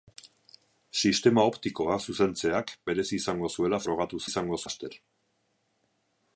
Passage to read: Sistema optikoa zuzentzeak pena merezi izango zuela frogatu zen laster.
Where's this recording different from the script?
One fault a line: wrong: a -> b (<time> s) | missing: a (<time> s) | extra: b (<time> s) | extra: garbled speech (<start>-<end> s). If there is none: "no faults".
missing: pena (2.7 s)
wrong: zen -> izango (4.3 s)